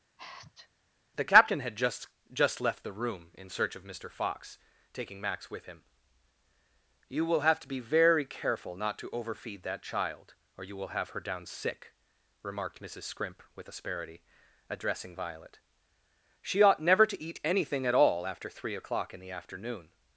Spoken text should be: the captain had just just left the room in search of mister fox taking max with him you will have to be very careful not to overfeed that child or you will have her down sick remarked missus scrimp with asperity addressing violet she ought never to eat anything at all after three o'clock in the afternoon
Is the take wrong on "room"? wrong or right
right